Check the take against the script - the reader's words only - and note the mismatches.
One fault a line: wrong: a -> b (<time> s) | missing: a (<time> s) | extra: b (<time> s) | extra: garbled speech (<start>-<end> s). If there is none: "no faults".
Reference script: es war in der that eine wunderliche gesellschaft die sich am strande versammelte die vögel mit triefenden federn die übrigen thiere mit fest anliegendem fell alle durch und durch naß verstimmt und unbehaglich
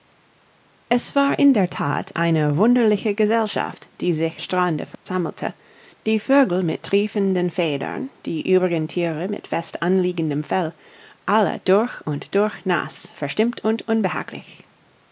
missing: am (4.4 s)